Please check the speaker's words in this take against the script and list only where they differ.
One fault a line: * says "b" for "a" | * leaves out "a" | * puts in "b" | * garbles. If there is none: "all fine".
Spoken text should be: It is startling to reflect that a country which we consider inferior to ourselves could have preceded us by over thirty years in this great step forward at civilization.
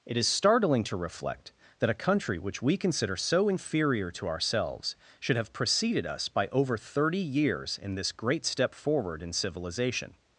* puts in "so"
* says "should" for "could"
* says "in" for "at"